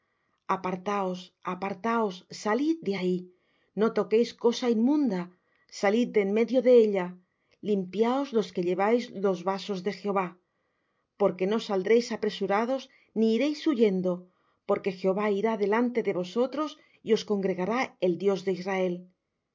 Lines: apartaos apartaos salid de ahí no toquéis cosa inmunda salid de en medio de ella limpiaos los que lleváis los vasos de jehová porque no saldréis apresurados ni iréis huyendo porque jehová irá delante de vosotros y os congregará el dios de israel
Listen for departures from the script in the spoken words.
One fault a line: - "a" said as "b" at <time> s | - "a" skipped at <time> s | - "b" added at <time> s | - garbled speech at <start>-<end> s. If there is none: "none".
none